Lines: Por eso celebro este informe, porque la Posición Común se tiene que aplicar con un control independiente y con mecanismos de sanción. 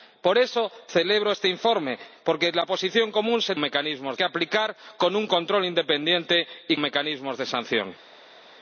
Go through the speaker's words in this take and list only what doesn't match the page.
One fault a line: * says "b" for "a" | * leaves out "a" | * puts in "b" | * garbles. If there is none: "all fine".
* says "mecanismos" for "tiene"
* leaves out "con"